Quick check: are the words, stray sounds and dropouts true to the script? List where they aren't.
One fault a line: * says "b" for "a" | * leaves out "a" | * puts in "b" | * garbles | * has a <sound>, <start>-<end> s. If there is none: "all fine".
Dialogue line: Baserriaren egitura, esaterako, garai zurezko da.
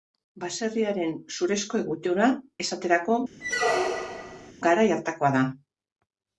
* puts in "zurezko"
* has a squeak, 3.4-4.5 s
* says "hartakoa" for "zurezko"